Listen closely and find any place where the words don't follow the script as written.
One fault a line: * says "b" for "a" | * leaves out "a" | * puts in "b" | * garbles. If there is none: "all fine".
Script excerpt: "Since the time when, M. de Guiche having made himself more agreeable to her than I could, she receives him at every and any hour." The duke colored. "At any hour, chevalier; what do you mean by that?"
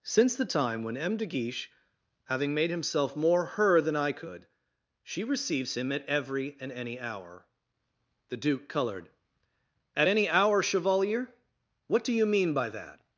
* leaves out "agreeable to"